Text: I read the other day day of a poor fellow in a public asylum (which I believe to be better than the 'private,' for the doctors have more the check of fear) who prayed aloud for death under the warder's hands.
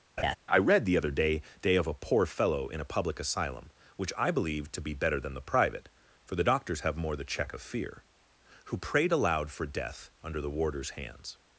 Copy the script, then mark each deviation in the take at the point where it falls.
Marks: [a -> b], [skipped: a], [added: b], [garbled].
I read the other day day of a poor fellow in a public asylum (which I believe to be better than the 'private,' for the doctors have more the check of fear) who prayed aloud for death under the warder's hands.